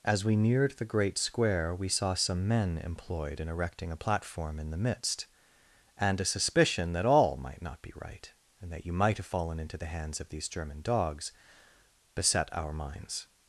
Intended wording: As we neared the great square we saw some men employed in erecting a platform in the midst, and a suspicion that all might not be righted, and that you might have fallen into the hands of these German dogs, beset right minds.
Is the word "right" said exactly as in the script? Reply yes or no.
no